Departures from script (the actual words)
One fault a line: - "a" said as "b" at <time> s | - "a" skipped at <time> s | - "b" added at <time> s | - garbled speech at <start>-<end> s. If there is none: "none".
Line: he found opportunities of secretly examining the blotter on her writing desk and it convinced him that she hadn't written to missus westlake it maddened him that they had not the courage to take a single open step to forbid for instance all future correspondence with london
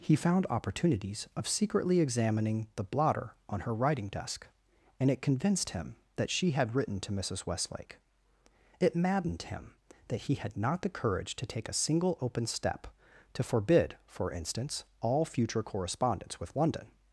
- "hadn't" said as "had" at 6.5 s
- "they" said as "he" at 10.2 s